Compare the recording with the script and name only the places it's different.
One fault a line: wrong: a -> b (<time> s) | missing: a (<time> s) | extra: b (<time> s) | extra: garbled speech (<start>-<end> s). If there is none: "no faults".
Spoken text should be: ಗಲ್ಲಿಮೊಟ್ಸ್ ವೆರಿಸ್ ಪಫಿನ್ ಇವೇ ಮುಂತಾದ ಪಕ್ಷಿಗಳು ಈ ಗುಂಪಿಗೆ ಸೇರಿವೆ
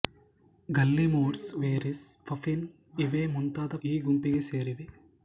missing: ಪಕ್ಷಿಗಳು (3.8 s)